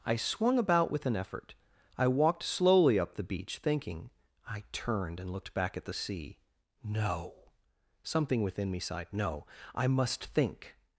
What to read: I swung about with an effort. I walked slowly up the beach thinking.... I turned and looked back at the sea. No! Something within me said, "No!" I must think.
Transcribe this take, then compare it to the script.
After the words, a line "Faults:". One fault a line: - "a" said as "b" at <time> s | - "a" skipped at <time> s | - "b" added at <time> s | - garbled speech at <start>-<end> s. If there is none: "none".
I swung about with an effort. I walked slowly up the beach thinking.... I turned and looked back at the sea. No! Something within me sighed, "No!" I must think.
Faults:
- "said" said as "sighed" at 8.8 s